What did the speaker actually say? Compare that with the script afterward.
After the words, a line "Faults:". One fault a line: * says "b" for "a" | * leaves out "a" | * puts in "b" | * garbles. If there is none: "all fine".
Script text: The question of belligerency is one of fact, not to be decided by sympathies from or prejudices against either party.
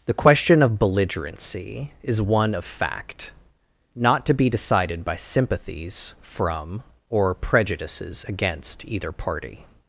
The question of belligerency is one of fact, not to be decided by sympathies from or prejudices against either party.
Faults:
all fine